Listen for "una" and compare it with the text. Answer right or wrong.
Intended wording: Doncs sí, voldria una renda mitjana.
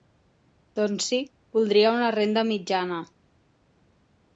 right